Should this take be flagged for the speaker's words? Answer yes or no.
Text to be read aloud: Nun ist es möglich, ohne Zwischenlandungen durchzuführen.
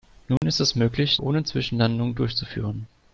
no